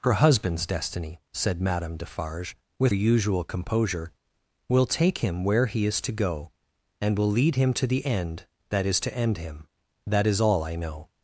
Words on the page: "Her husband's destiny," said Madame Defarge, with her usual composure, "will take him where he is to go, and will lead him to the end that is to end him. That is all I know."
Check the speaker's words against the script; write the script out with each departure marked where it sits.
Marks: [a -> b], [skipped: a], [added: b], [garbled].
"Her husband's destiny," said Madame Defarge, with [skipped: her] usual composure, "will take him where he is to go, and will lead him to the end that is to end him. That is all I know."